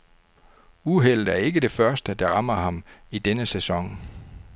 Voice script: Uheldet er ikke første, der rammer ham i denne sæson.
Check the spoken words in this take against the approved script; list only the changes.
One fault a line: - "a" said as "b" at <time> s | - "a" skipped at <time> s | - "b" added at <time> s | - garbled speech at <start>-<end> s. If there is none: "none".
- "det" added at 1.6 s